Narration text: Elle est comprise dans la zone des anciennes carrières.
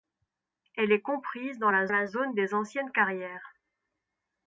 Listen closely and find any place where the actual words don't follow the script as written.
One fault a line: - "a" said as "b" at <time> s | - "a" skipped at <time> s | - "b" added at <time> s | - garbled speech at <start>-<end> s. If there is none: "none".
- "la" added at 1.9 s